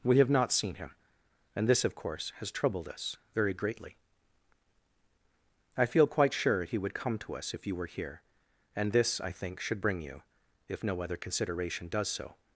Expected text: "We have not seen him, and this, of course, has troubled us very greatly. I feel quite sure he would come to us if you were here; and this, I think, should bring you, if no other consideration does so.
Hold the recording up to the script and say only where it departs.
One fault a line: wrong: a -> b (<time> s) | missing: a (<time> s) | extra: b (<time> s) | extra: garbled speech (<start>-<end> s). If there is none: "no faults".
no faults